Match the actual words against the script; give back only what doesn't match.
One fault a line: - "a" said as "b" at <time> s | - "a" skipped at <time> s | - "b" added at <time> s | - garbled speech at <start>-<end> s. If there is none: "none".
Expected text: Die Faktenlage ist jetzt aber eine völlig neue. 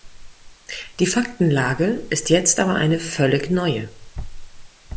none